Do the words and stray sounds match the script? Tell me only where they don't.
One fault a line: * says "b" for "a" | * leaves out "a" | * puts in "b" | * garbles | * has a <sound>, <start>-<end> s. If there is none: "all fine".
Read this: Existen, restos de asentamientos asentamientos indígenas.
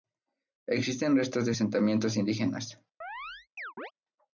* leaves out "asentamientos"
* has a chirp, 3.0-3.9 s